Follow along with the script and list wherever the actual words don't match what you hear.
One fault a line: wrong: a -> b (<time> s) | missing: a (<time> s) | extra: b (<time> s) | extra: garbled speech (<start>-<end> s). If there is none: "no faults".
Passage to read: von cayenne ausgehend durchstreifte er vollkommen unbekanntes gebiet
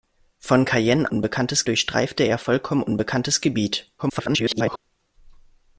wrong: ausgehend -> unbekanntes (1.1 s)
extra: garbled speech (4.0-4.8 s)